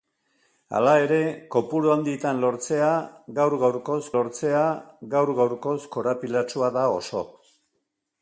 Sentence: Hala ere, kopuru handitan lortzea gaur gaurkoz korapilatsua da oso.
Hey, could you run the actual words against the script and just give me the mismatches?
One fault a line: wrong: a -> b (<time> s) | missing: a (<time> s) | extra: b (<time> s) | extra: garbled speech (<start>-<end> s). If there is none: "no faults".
extra: lortzea gaur gaurkoz (4.2 s)